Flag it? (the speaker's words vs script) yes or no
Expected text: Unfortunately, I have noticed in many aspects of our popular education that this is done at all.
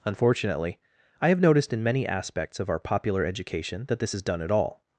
no